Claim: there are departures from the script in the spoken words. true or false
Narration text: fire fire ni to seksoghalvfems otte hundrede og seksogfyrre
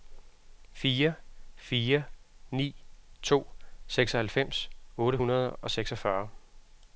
false